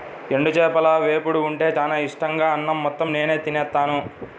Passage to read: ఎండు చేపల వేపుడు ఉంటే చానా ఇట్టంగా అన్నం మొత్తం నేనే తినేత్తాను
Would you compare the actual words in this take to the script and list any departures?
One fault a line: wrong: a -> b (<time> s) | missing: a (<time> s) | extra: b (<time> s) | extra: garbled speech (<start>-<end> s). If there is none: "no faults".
no faults